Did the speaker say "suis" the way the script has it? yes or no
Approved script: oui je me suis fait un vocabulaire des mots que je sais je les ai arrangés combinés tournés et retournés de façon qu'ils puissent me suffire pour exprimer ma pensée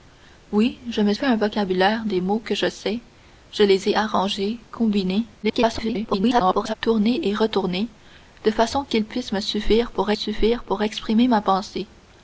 no